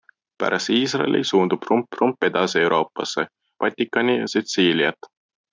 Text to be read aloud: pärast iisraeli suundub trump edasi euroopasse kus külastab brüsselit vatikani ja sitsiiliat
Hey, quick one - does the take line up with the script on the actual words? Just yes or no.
no